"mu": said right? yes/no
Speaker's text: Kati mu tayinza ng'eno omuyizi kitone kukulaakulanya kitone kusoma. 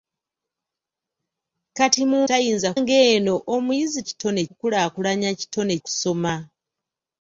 yes